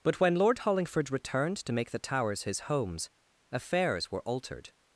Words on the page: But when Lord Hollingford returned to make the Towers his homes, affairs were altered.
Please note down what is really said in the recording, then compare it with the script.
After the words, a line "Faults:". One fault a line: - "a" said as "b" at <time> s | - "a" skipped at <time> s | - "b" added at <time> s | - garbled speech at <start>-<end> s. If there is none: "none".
But when Lord Hollingford returned to make the Towers his homes, affairs were altered.
Faults:
none